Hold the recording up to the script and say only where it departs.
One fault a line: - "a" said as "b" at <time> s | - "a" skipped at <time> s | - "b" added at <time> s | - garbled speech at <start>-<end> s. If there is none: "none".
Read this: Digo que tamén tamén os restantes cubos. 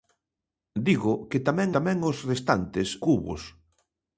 none